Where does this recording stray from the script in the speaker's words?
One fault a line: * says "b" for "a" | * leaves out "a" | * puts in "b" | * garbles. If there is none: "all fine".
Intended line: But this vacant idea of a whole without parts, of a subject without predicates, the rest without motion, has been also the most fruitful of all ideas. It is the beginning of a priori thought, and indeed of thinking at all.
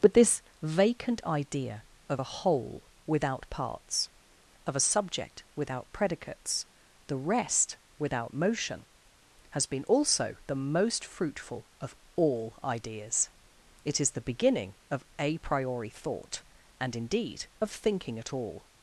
all fine